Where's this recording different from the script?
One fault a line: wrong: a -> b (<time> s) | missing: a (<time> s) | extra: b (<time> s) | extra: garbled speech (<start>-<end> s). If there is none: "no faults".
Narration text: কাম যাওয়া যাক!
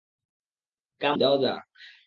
no faults